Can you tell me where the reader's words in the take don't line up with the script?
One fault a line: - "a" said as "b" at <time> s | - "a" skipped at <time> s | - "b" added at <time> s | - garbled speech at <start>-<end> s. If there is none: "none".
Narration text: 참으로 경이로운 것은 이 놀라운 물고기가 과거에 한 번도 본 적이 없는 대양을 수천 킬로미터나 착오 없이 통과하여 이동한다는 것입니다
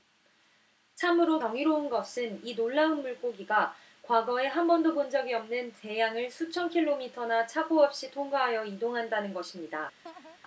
none